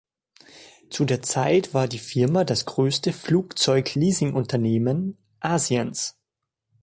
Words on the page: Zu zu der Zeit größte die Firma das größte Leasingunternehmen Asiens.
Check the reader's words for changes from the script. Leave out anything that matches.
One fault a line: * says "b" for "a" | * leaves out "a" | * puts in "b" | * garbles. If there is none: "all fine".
* leaves out "zu"
* says "war" for "größte"
* puts in "Flugzeug"